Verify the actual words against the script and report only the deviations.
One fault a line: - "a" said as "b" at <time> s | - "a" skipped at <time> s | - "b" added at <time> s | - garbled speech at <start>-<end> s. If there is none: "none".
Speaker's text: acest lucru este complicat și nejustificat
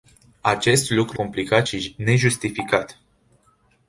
- "este" skipped at 1.2 s